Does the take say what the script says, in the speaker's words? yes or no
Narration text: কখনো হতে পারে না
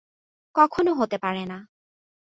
yes